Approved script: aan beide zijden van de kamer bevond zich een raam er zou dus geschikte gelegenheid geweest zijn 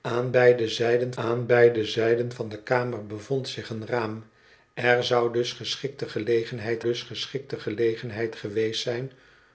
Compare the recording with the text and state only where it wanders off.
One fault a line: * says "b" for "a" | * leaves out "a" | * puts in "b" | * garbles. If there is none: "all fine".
* puts in "aan beide zijden"
* puts in "dus geschikte gelegenheid"